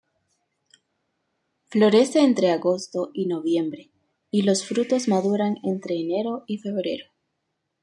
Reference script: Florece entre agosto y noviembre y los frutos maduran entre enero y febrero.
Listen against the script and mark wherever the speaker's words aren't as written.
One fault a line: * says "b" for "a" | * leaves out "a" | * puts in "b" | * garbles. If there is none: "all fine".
all fine